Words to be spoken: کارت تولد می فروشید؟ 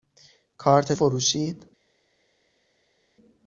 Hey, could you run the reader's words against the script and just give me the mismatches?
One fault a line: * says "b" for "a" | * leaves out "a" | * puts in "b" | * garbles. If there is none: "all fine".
* leaves out "تولد می"